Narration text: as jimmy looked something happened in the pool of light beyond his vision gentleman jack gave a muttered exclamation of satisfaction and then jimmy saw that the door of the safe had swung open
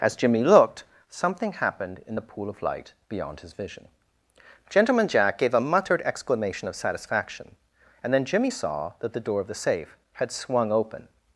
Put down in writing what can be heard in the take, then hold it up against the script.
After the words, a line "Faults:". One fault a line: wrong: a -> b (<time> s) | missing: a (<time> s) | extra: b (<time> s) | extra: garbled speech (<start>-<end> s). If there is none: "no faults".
as jimmy looked something happened in the pool of light beyond his vision gentleman jack gave a muttered exclamation of satisfaction and then jimmy saw that the door of the safe had swung open
Faults:
no faults